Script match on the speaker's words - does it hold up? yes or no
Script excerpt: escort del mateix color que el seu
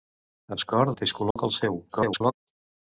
no